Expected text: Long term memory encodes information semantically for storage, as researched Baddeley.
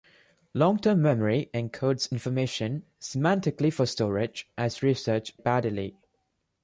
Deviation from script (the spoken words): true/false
false